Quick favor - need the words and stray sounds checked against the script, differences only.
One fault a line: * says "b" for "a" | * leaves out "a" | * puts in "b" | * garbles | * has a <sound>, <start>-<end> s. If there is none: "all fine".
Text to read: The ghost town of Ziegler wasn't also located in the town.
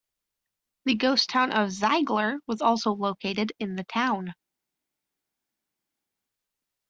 * says "was" for "wasn't"